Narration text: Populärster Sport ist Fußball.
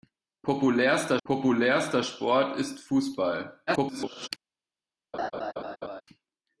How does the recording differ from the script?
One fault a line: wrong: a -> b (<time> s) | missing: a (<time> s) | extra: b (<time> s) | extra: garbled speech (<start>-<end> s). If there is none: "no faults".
extra: populärster (1.2 s)
extra: garbled speech (3.7-4.3 s)